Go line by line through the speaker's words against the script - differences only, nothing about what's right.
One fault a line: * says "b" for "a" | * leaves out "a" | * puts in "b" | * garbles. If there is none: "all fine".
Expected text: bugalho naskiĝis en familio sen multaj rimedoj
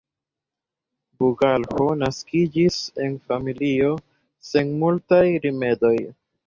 all fine